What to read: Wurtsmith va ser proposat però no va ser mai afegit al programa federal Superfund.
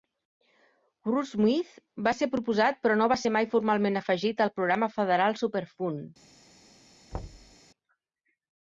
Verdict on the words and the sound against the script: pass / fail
fail